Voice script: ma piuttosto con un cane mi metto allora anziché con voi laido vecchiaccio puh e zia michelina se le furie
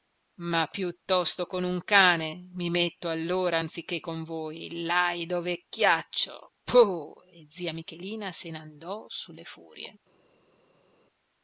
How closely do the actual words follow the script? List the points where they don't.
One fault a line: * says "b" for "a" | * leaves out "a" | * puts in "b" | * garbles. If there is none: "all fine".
* puts in "n'andò su"